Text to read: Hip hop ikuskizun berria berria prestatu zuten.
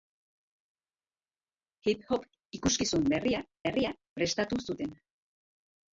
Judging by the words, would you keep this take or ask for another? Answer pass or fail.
pass